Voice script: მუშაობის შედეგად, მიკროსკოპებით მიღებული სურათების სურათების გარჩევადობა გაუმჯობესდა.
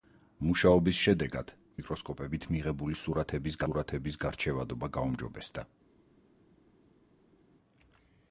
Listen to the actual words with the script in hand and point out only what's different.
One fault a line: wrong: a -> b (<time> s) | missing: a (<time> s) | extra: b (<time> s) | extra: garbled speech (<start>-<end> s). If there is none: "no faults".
no faults